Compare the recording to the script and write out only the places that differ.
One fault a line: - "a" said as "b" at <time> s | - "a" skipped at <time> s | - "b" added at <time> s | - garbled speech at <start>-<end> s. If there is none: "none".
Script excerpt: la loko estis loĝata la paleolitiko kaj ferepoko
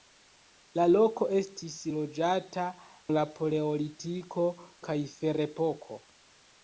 none